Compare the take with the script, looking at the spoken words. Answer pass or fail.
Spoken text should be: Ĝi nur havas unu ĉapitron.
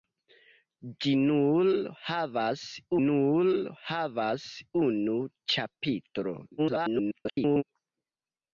fail